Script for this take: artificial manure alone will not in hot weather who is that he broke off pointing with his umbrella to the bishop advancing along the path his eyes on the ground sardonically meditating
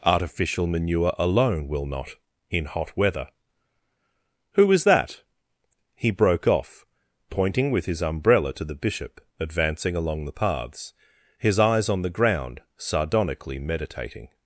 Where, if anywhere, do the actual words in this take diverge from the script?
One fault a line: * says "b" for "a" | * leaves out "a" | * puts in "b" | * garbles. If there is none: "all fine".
* says "paths" for "path"